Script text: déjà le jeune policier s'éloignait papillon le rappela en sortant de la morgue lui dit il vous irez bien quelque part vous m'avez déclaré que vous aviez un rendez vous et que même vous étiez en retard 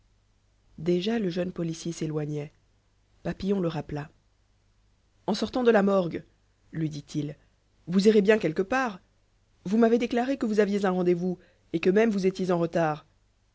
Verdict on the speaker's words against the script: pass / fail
pass